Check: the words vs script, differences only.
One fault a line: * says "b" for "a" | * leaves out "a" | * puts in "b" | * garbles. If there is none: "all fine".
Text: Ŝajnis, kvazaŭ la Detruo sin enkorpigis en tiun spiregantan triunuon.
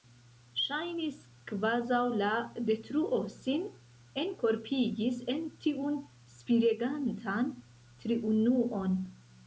all fine